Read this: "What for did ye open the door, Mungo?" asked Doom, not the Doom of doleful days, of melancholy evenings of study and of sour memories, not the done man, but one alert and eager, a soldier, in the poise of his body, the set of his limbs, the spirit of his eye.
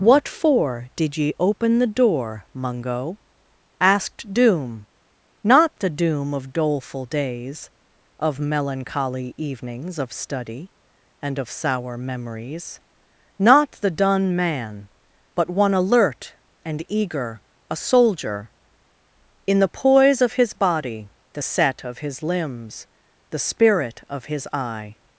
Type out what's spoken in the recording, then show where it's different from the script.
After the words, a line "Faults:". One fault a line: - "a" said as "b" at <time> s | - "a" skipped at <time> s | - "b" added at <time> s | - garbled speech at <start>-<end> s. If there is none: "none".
"What for did ye open the door, Mungo?" asked Doom, not the Doom of doleful days, of melancholy evenings of study and of sour memories, not the done man, but one alert and eager, a soldier, in the poise of his body, the set of his limbs, the spirit of his eye.
Faults:
none